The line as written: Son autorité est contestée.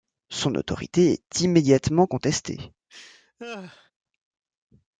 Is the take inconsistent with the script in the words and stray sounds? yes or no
yes